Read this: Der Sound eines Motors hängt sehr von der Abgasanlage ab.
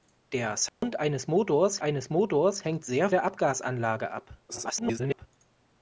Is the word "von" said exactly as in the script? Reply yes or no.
no